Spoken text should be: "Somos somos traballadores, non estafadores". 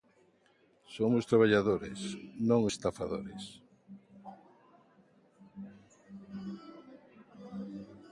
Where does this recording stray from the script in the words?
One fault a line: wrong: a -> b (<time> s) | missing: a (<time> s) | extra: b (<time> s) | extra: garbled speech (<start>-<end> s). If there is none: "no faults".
missing: somos (1.2 s)